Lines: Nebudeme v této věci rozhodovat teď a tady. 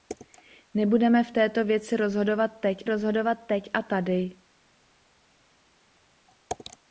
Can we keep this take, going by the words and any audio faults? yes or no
no